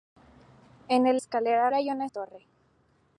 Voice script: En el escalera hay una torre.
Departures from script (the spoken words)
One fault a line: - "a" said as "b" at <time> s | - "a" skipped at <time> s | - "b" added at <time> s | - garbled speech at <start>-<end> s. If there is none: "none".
none